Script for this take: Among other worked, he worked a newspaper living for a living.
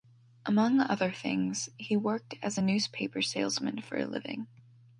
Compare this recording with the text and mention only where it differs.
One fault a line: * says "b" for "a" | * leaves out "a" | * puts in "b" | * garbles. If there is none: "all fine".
* says "things" for "worked"
* puts in "as"
* says "salesman" for "living"